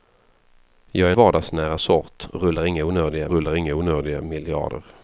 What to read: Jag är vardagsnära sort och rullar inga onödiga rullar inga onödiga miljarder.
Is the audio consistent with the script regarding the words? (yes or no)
yes